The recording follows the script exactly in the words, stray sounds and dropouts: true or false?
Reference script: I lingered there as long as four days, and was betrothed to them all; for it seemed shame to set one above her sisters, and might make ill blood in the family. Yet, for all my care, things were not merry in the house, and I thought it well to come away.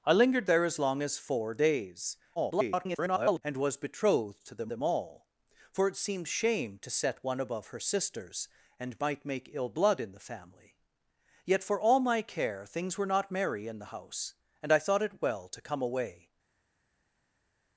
false